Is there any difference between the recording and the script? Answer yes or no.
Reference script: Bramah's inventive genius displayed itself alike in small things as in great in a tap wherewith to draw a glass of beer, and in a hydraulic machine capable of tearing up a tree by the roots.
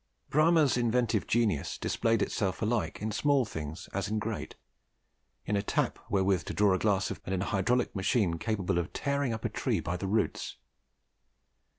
yes